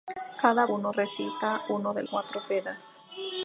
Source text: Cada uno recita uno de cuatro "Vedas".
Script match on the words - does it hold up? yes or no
yes